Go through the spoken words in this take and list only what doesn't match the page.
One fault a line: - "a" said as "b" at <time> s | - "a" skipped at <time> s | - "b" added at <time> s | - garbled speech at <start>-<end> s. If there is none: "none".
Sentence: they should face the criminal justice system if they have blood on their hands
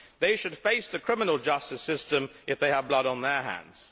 none